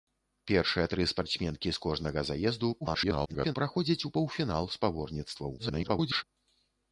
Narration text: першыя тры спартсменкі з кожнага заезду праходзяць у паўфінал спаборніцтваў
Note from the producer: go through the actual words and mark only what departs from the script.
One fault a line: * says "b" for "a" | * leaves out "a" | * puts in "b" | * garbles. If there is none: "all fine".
* garbles
* garbles